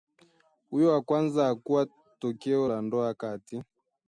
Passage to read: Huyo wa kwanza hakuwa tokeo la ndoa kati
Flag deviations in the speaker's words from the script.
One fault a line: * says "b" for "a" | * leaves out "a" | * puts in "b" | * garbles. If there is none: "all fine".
all fine